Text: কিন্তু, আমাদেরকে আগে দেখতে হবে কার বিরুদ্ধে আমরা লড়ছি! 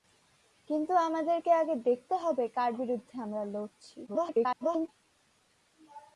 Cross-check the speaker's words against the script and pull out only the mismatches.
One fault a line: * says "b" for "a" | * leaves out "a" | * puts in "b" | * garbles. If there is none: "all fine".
* garbles